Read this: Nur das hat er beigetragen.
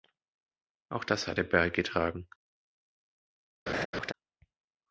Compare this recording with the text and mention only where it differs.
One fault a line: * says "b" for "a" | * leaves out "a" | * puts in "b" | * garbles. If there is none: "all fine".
* says "Auch" for "Nur"